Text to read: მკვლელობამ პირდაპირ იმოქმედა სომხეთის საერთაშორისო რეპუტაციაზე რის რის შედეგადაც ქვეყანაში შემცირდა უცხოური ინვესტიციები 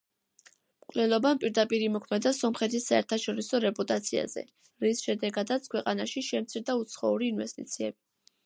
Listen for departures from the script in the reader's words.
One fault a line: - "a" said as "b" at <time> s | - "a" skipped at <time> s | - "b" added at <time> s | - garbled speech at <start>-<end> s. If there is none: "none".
- "რის" skipped at 5.0 s